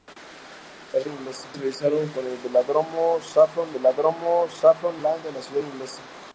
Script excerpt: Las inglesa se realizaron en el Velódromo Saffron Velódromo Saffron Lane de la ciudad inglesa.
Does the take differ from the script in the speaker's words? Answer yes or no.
no